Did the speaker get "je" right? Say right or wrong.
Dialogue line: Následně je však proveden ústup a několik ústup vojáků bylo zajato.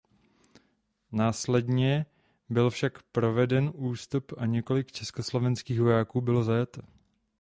wrong